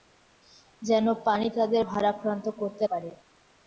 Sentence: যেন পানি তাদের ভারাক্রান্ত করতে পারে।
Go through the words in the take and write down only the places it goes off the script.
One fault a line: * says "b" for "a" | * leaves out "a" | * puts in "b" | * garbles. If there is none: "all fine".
all fine